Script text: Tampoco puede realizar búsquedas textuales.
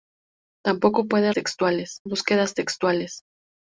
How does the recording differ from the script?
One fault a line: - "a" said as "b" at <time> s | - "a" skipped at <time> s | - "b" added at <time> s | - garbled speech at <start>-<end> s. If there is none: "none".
- "realizar" said as "textuales" at 1.3 s